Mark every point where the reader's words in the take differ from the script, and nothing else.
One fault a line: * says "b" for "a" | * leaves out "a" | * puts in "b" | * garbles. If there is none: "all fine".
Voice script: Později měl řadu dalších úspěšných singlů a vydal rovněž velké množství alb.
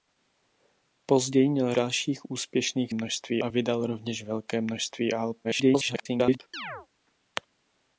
* leaves out "řadu"
* says "množství" for "singlů"
* garbles